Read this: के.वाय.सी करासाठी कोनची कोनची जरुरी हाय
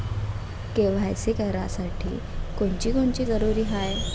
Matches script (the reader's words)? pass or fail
pass